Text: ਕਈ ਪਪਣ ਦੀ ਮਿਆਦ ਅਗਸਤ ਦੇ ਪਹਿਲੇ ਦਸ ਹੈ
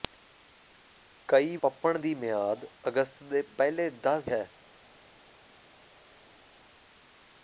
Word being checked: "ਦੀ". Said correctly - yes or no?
yes